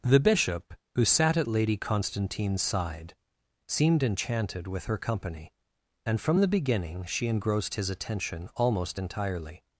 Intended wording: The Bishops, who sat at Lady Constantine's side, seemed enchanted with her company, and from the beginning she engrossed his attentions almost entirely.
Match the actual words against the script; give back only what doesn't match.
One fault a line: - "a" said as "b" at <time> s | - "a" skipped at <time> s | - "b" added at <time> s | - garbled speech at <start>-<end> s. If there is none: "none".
- "Bishops" said as "Bishop" at 0.2 s
- "attentions" said as "attention" at 7.9 s